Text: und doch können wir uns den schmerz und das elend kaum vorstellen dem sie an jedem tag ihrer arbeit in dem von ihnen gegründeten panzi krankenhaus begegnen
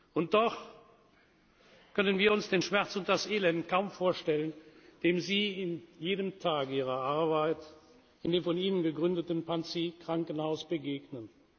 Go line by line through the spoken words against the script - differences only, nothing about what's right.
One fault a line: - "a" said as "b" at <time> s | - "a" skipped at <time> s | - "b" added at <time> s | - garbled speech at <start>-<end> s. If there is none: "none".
none